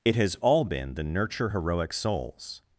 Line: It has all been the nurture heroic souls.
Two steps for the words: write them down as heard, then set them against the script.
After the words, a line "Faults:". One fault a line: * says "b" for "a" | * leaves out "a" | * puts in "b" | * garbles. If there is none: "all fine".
It has all been the nurture heroic souls.
Faults:
all fine